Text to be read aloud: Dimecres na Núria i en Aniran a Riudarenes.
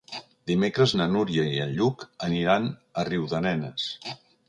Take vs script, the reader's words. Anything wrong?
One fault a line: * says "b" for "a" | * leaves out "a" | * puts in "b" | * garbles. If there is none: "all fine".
* puts in "Lluc"